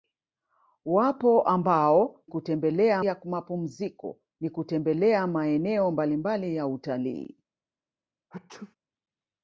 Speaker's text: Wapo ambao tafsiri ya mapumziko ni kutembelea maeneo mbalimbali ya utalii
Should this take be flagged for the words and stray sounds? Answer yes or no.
yes